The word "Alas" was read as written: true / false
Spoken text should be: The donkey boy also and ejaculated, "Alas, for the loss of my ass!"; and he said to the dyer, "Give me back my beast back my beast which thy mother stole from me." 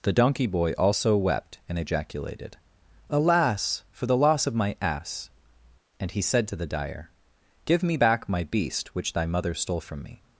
true